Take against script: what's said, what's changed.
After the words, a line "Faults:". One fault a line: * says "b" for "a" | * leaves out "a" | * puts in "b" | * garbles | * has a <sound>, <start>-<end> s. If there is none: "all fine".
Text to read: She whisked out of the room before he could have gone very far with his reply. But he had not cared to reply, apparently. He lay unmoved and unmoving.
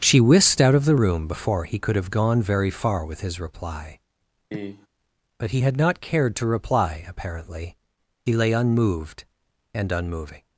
She whisked out of the room before he could have gone very far with his reply. But he had not cared to reply, apparently. He lay unmoved and unmoving.
Faults:
* has a cough, 4.5-4.9 s